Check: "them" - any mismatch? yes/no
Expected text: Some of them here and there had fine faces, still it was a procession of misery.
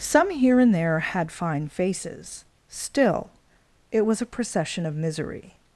yes